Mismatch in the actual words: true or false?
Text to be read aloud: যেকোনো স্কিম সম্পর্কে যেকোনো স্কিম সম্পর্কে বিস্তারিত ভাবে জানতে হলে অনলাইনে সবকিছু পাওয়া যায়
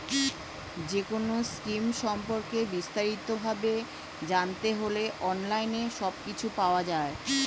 true